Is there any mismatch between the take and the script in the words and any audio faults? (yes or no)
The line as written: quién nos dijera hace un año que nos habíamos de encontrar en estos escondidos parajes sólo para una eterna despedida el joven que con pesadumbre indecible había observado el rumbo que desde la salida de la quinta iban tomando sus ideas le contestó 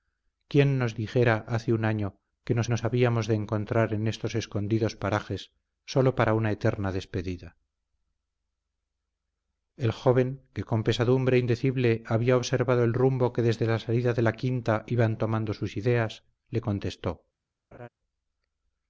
yes